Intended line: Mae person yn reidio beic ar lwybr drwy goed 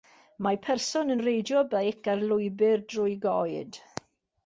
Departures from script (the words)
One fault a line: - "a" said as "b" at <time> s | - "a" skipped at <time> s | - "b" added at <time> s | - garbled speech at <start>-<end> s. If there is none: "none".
none